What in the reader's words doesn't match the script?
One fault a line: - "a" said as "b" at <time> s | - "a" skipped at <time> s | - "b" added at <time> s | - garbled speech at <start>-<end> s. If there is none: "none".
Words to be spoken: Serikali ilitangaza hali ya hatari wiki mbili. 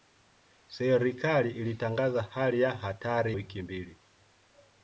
none